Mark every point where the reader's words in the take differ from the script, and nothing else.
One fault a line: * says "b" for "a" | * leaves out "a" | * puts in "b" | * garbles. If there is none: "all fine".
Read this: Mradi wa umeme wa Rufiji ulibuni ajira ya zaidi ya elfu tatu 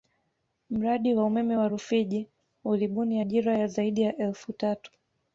all fine